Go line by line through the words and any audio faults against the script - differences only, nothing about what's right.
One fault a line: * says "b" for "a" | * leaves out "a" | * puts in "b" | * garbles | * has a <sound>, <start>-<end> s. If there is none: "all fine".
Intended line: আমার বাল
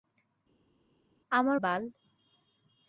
all fine